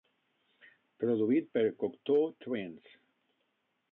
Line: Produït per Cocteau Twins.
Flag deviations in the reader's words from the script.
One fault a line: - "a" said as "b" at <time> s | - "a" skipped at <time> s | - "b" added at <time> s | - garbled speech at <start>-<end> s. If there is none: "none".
none